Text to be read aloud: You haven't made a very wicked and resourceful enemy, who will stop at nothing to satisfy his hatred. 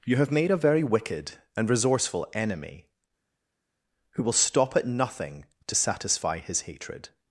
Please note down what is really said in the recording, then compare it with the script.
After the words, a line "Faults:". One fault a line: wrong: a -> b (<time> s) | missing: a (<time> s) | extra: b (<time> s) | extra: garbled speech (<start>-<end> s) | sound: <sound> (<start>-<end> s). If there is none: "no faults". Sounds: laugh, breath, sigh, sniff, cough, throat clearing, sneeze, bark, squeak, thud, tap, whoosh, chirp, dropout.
You have made a very wicked and resourceful enemy, who will stop at nothing to satisfy his hatred.
Faults:
wrong: haven't -> have (0.1 s)